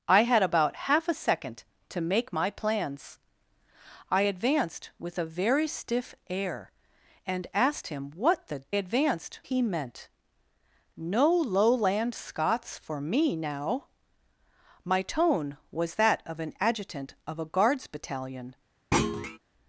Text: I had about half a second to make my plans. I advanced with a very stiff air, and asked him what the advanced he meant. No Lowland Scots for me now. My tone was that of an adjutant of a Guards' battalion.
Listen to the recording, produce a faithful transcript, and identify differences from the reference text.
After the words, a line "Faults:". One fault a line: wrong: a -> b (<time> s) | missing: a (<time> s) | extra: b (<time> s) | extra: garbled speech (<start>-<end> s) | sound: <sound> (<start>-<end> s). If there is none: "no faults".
I had about half a second to make my plans. I advanced with a very stiff air, and asked him what the advanced he meant. No Lowland Scots for me now. My tone was that of an adjutant of a Guards' battalion.
Faults:
sound: thud (18.9-19.4 s)